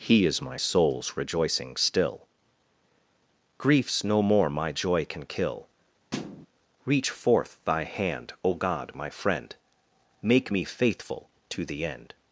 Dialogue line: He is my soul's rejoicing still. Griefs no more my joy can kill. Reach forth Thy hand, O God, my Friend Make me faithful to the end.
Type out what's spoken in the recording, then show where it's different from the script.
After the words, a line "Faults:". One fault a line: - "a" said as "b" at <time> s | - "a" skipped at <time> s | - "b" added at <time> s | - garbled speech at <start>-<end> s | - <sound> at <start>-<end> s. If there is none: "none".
He is my soul's rejoicing still. Griefs no more my joy can kill. Reach forth Thy hand, O God, my Friend Make me faithful to the end.
Faults:
- thud at 6.1-6.5 s